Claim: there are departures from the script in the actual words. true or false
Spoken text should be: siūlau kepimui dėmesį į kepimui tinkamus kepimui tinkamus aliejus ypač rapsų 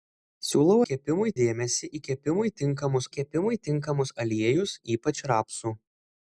false